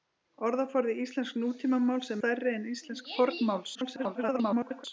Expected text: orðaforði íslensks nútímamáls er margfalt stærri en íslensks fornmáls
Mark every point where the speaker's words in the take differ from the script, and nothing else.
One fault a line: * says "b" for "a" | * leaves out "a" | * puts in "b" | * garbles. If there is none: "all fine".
* leaves out "margfalt"
* garbles